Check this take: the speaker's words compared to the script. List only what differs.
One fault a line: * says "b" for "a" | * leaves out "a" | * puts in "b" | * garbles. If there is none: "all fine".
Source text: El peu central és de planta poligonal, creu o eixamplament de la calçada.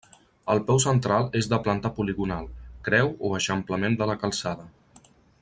all fine